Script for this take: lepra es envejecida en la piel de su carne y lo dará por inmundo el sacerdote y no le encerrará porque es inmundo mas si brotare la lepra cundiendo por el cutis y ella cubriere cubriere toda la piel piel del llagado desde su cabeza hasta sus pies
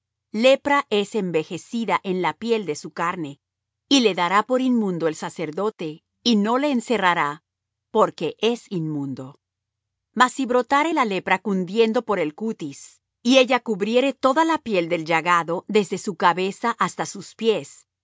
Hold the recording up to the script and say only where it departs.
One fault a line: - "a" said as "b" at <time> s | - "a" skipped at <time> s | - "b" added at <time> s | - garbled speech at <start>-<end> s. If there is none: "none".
- "lo" said as "le" at 4.0 s
- "cubriere" skipped at 14.1 s
- "piel" skipped at 14.9 s